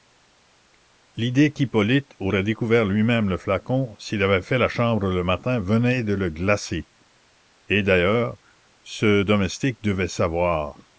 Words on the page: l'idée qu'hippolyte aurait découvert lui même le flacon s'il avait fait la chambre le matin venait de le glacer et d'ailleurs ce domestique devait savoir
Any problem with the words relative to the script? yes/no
no